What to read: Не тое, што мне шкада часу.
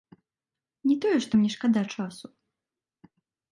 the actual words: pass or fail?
pass